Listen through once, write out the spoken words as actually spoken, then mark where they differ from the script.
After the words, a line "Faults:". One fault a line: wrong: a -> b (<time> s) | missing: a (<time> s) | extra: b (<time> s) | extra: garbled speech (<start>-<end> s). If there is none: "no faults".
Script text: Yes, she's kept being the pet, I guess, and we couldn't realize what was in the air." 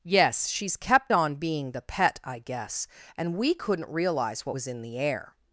Yes, she's kept on being the pet, I guess, and we couldn't realize what was in the air."
Faults:
extra: on (1.1 s)